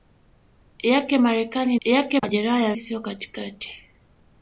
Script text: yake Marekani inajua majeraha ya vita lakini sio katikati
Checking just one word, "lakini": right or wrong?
wrong